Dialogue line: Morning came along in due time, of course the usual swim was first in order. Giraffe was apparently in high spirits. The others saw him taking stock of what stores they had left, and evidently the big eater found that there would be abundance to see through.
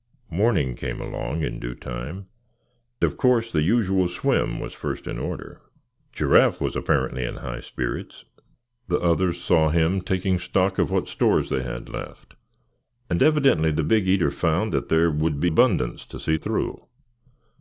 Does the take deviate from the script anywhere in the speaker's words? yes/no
no